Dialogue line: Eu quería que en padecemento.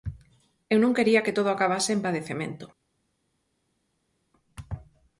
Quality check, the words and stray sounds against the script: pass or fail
fail